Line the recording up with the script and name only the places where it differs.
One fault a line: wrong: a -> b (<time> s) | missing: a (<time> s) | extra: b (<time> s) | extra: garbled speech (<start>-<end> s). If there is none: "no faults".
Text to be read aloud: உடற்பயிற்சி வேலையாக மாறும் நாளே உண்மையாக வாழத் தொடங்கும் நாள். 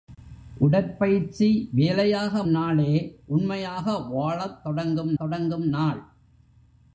missing: மாறும் (2.4 s)
extra: தொடங்கும் (5.2 s)